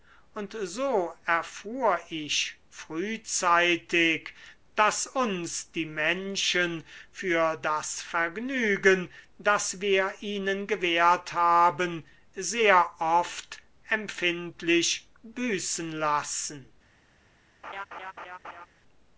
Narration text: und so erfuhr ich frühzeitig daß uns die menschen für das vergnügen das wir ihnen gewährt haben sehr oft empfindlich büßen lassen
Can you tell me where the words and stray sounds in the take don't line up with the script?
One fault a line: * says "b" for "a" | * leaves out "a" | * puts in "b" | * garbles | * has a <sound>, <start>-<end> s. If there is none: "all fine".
* has a laugh, 17.6-18.7 s